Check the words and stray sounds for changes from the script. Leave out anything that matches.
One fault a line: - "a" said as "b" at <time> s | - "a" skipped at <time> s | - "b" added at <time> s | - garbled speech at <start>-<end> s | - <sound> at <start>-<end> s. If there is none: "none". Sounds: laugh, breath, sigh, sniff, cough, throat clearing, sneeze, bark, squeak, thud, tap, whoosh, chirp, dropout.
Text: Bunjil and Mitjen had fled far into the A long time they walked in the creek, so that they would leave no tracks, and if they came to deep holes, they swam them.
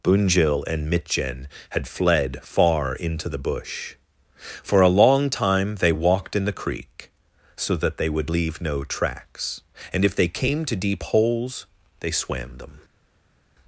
- "Bush For" added at 3.4 s